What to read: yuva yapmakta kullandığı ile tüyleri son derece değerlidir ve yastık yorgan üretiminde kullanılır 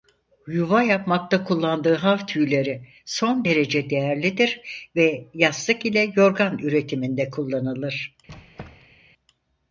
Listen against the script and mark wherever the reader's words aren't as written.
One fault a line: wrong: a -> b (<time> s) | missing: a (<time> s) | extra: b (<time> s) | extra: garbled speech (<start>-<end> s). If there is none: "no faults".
wrong: ile -> hav (1.9 s)
extra: ile (5.9 s)